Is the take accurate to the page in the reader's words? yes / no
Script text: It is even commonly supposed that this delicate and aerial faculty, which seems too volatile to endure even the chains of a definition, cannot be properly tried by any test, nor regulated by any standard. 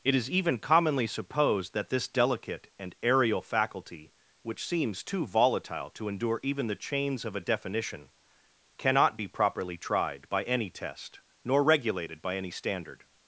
yes